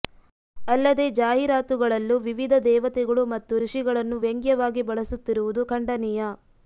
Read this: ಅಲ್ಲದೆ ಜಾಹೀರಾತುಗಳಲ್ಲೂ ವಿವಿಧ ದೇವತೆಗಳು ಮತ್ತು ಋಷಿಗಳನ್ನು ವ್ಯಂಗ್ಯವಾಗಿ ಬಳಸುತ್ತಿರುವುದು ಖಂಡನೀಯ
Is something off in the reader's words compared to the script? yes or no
no